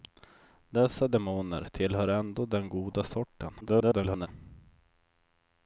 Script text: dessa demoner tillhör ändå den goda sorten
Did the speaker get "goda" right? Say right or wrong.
right